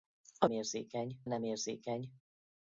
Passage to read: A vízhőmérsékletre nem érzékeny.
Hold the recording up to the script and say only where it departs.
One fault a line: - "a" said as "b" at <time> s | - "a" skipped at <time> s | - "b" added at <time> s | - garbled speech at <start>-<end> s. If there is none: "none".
- "vízhőmérsékletre" said as "érzékeny" at 0.5 s